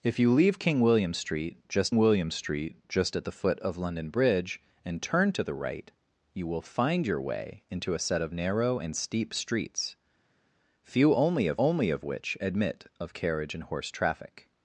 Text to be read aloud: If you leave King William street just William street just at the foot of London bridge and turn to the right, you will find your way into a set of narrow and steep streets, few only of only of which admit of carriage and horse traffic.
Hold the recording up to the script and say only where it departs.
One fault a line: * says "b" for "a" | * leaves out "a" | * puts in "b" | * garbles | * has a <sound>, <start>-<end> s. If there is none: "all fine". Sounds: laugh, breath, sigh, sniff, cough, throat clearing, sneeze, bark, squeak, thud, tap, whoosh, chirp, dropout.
all fine